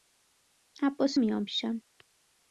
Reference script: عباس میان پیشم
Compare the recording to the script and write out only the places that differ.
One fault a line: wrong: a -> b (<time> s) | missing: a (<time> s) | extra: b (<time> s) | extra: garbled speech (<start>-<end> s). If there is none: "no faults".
no faults